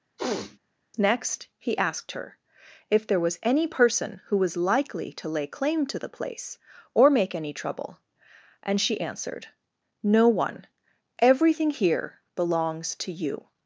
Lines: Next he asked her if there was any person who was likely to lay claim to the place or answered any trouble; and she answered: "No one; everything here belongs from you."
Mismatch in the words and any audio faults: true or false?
true